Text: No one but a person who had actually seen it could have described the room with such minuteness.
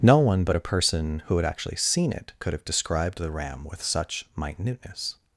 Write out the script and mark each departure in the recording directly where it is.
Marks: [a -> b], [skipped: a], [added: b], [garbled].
No one but a person who had actually seen it could have described the [room -> ram] with such minuteness.